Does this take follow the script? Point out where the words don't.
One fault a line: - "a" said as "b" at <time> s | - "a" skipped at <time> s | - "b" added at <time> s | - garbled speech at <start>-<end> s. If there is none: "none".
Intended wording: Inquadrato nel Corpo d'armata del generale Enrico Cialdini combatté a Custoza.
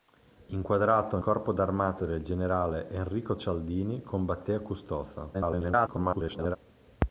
- "nel" skipped at 1.2 s
- garbled speech at 5.3-6.6 s